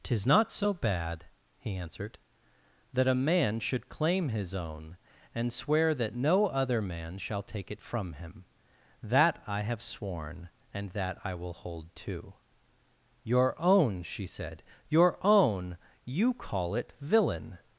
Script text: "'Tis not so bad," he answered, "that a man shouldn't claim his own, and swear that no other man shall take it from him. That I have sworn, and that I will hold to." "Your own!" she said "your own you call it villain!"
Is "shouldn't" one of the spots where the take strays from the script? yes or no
yes